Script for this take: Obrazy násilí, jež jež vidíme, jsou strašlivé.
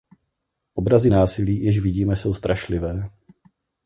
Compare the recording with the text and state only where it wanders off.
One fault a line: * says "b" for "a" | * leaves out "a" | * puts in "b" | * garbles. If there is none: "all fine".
* leaves out "jež"